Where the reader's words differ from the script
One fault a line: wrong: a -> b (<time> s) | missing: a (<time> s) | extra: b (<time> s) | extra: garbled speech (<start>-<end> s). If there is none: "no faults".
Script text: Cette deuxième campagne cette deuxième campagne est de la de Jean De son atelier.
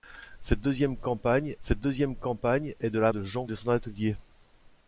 no faults